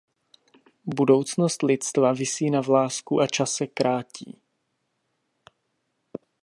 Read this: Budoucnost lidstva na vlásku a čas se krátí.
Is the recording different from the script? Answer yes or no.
yes